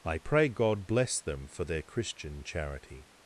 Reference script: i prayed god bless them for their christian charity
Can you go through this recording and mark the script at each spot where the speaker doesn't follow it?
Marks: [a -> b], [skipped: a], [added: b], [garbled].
i [prayed -> pray] god bless them for their christian charity